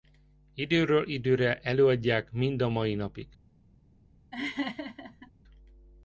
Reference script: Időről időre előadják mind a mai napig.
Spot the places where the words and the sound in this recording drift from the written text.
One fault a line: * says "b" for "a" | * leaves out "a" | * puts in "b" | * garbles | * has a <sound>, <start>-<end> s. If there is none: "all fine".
* has a laugh, 4.3-5.3 s